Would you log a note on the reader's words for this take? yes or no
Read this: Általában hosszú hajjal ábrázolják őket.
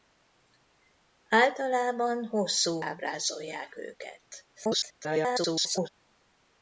yes